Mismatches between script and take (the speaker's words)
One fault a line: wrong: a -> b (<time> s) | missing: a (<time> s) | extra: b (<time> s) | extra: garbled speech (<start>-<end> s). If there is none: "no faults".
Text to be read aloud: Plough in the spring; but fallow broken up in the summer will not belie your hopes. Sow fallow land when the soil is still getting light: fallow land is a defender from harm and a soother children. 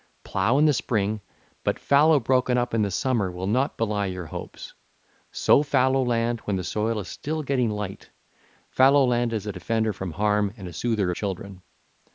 no faults